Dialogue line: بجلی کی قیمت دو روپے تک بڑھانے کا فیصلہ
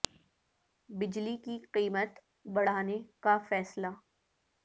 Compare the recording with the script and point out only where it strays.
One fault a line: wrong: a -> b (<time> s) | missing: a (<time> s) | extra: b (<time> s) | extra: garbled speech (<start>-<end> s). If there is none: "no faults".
missing: دو روپے تک (2.1 s)